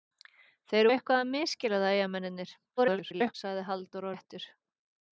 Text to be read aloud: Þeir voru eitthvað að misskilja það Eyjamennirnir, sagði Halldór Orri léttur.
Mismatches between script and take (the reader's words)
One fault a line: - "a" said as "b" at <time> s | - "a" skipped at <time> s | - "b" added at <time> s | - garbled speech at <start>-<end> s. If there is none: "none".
- "voru" skipped at 0.9 s
- garbled speech at 2.8-3.3 s
- "Orri" skipped at 4.1 s